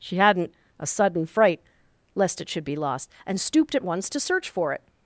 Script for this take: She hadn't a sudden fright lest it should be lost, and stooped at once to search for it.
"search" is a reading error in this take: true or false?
false